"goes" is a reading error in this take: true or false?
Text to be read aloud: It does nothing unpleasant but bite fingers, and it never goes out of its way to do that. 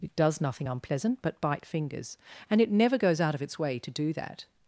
false